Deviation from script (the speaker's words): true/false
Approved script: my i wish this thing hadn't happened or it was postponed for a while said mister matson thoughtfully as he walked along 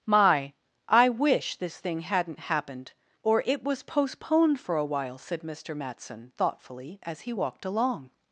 false